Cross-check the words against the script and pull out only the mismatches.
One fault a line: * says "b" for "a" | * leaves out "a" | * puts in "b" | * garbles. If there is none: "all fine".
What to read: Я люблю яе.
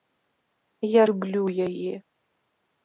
all fine